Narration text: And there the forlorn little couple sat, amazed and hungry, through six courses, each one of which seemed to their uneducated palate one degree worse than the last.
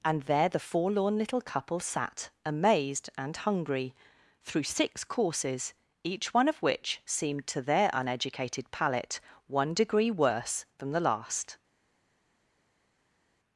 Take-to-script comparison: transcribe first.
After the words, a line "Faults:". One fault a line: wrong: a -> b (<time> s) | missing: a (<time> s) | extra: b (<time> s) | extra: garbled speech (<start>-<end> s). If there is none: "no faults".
And there the forlorn little couple sat, amazed and hungry, through six courses, each one of which seemed to their uneducated palate one degree worse than the last.
Faults:
no faults